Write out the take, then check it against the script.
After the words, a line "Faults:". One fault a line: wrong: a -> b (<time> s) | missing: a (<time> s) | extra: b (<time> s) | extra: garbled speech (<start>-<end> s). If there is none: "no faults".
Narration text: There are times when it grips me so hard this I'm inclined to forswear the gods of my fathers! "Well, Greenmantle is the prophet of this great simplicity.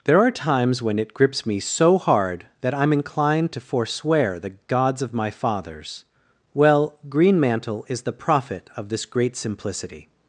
There are times when it grips me so hard that I'm inclined to forswear the gods of my fathers! "Well, Greenmantle is the prophet of this great simplicity.
Faults:
wrong: this -> that (2.6 s)